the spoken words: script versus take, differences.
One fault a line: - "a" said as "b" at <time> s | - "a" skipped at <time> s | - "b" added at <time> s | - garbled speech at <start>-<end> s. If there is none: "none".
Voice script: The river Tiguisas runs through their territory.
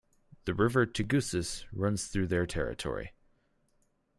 none